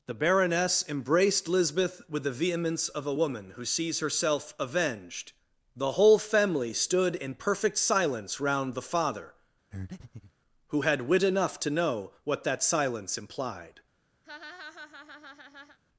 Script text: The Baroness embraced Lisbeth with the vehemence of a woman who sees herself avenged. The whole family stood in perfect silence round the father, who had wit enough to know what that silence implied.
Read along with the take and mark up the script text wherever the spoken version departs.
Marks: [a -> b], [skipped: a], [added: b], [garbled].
The Baroness embraced Lisbeth with the vehemence of a woman who sees herself avenged. The whole family stood in perfect silence round the father, who had wit enough to know what that silence implied.